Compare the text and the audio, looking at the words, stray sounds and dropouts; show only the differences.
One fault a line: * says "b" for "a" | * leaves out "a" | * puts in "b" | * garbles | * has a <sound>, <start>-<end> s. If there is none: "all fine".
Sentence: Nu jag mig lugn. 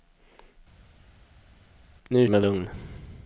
all fine